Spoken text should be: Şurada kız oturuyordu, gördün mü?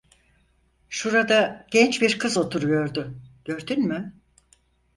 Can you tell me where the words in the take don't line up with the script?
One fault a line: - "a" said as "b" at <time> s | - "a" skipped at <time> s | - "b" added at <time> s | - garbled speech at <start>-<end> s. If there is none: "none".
- "genç bir" added at 1.7 s